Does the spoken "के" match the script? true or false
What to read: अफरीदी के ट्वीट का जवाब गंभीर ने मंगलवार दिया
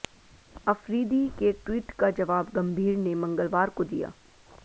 true